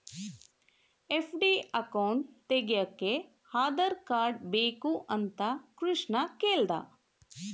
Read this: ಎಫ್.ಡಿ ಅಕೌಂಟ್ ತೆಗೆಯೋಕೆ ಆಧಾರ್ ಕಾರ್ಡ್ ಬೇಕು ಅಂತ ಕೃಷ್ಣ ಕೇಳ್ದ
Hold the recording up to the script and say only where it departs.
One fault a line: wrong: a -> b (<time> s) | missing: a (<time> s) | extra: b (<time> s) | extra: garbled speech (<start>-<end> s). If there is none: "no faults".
no faults